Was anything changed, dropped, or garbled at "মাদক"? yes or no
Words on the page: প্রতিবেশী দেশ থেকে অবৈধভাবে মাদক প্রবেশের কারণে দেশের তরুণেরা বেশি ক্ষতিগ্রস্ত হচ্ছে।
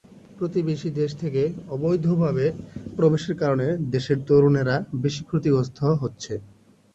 yes